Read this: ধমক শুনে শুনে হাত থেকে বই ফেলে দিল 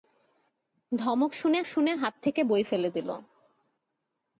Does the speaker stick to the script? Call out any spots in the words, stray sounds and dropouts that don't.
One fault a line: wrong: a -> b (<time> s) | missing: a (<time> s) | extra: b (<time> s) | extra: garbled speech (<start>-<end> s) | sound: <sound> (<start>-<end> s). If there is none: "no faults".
no faults